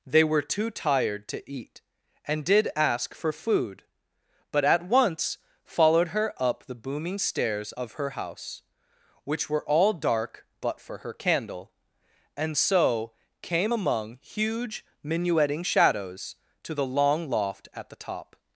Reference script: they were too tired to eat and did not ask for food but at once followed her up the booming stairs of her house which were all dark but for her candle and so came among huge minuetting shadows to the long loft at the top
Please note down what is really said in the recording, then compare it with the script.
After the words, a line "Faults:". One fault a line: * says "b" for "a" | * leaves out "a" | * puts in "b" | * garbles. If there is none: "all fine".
they were too tired to eat and did ask for food but at once followed her up the booming stairs of her house which were all dark but for her candle and so came among huge minuetting shadows to the long loft at the top
Faults:
* leaves out "not"